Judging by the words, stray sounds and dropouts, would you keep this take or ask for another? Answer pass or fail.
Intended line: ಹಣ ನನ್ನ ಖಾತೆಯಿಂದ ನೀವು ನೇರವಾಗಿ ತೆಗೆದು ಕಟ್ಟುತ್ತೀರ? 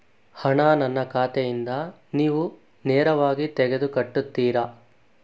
pass